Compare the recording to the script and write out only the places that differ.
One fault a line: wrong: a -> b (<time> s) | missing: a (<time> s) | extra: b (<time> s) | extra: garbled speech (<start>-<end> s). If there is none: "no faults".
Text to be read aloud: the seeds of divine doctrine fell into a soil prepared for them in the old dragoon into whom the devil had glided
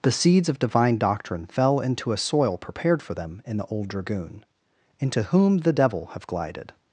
wrong: had -> have (6.1 s)